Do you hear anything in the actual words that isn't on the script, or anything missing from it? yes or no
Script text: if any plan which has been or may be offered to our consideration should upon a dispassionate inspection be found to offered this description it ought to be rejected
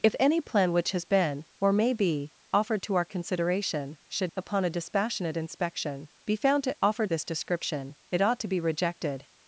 no